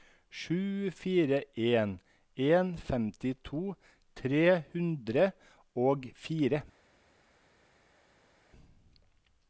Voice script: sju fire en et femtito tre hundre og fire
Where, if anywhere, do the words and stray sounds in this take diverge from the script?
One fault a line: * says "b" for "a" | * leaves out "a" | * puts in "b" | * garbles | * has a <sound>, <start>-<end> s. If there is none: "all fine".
* says "en" for "et"